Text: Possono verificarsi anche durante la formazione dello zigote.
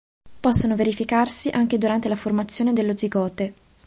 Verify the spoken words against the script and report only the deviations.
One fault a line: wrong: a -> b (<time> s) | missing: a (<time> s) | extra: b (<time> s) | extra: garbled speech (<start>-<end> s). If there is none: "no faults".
no faults